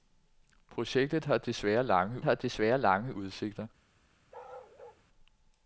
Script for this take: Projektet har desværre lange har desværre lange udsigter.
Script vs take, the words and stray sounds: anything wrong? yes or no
yes